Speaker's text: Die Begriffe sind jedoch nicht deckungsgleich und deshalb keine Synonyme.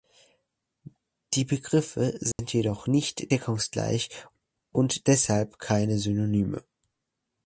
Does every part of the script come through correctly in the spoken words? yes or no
yes